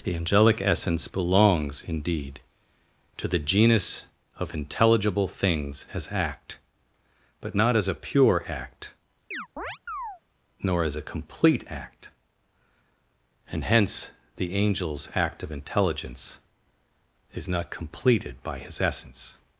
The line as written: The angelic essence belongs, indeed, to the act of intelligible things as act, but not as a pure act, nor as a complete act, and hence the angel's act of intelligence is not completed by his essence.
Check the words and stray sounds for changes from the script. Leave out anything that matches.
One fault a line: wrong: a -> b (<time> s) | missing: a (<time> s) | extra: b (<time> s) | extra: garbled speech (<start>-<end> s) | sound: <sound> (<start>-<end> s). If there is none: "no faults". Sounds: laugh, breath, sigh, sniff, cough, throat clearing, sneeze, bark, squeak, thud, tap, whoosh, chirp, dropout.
wrong: act -> genus (3.4 s)
sound: chirp (9.3-10.2 s)